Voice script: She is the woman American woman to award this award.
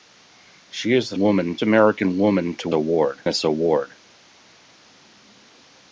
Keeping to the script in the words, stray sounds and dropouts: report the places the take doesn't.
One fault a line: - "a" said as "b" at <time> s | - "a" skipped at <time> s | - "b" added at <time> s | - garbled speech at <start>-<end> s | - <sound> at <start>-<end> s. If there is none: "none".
none